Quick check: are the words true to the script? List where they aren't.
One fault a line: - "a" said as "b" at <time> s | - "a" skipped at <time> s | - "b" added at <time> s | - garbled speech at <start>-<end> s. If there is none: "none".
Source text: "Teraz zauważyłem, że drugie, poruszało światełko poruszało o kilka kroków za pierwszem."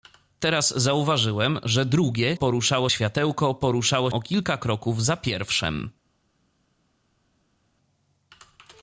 none